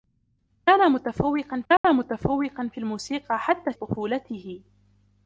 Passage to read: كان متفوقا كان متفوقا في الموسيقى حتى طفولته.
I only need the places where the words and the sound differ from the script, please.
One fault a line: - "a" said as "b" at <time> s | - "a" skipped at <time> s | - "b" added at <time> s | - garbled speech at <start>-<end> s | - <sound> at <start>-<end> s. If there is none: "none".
- dropout at 1.8-1.8 s